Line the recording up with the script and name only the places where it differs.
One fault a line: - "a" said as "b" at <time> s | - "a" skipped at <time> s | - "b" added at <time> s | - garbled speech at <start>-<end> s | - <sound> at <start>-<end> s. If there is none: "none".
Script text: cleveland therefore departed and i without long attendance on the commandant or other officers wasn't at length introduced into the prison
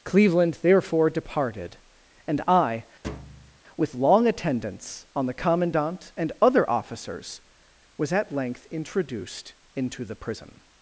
- thud at 3.0-3.6 s
- "without" said as "with" at 3.8 s
- "or" said as "and" at 6.2 s
- "wasn't" said as "was" at 8.0 s